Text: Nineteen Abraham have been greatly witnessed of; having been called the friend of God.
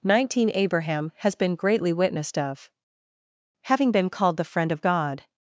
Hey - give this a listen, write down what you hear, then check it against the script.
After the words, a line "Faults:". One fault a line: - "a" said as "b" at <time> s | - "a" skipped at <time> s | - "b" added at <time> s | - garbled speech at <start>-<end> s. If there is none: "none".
Nineteen Abraham has been greatly witnessed of; having been called the friend of God.
Faults:
- "have" said as "has" at 1.2 s